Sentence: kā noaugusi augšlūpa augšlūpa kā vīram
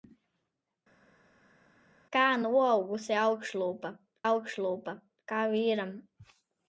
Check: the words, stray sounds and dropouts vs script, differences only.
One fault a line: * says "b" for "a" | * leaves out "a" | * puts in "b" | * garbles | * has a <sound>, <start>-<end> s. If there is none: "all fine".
all fine